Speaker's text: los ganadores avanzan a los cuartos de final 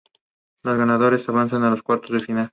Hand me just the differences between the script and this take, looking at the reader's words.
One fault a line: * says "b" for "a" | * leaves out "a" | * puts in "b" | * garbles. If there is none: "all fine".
all fine